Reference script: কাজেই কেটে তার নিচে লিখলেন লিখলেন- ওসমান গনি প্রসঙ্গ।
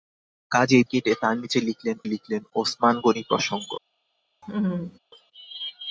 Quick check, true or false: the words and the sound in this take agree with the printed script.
false